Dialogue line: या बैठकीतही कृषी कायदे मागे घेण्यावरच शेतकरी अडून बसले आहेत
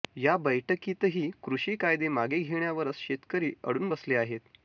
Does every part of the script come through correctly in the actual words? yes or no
yes